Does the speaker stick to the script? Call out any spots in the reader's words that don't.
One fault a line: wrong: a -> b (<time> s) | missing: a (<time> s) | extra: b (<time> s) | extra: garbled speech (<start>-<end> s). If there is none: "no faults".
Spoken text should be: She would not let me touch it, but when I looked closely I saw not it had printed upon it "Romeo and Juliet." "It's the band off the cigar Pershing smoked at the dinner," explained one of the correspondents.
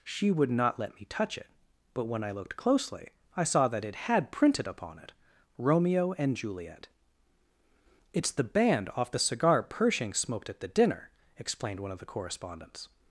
wrong: not -> that (3.7 s)